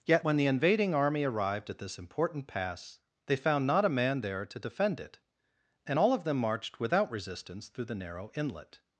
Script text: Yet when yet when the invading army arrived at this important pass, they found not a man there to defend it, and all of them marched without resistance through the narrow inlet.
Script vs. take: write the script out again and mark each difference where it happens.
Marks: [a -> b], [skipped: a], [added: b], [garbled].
Yet when [skipped: yet when] the invading army arrived at this important pass, they found not a man there to defend it, and all of them marched without resistance through the narrow inlet.